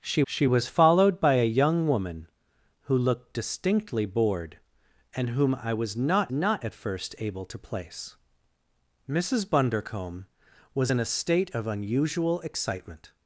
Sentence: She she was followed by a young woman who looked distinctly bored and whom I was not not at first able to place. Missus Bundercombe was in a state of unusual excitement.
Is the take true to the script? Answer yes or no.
yes